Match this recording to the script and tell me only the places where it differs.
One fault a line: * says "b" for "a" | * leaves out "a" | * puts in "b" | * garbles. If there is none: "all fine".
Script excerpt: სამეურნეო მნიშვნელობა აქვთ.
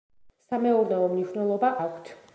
all fine